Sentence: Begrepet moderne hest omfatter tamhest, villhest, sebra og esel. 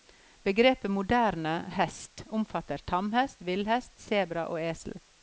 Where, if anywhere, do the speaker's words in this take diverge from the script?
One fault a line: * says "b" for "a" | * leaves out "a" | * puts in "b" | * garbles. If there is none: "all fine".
all fine